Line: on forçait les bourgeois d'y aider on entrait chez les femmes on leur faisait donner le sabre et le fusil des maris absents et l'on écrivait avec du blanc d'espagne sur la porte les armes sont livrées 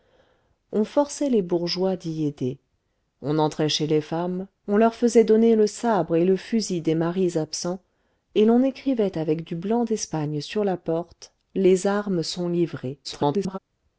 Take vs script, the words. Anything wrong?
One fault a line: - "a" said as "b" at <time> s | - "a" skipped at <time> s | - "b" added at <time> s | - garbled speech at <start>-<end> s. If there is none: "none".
- garbled speech at 13.0-13.6 s